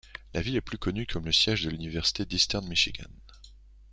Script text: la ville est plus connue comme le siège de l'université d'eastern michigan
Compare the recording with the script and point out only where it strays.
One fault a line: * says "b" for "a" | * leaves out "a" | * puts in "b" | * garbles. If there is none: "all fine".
all fine